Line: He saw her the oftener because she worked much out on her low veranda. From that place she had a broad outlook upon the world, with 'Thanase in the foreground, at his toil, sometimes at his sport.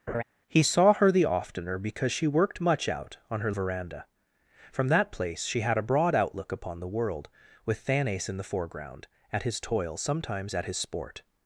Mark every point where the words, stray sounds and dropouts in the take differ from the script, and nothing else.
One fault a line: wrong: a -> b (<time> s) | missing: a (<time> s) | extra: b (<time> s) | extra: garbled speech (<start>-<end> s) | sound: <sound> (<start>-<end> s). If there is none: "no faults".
sound: laugh (0.1-0.2 s)
missing: low (3.5 s)